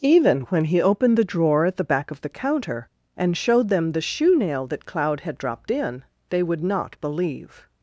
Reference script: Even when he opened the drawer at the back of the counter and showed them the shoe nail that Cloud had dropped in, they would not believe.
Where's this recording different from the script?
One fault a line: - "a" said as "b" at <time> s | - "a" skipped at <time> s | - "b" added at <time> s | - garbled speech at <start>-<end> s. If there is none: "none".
none